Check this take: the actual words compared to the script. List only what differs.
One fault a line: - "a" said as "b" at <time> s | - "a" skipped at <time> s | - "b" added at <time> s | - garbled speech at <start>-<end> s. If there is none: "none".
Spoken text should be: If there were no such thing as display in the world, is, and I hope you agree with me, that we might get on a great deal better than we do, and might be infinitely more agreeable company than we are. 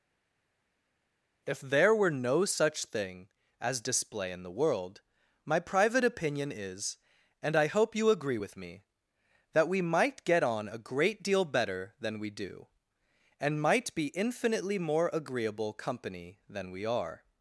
- "my private opinion" added at 5.4 s